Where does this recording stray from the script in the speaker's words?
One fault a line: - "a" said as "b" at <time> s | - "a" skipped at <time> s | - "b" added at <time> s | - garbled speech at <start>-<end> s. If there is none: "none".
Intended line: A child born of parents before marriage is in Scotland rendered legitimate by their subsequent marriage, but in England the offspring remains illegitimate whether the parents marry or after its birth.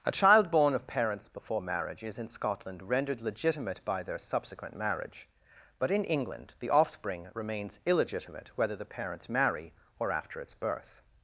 none